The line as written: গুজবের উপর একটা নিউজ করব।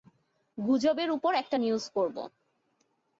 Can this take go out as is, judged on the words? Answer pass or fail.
pass